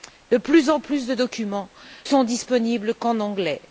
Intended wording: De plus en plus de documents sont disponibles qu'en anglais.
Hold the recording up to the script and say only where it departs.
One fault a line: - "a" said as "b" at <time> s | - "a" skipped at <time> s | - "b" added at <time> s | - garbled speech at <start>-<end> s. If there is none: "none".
none